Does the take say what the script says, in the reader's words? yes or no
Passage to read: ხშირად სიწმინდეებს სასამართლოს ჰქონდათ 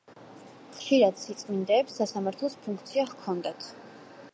no